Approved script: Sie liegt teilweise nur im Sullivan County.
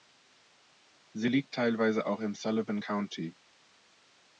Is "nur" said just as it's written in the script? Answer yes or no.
no